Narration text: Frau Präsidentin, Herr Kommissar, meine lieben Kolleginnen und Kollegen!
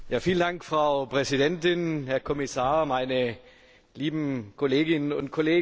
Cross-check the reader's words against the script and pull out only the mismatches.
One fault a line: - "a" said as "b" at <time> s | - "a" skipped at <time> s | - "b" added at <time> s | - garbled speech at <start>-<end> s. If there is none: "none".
none